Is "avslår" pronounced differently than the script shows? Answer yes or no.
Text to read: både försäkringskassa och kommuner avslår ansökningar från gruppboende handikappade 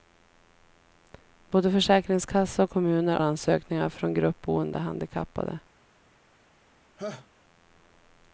yes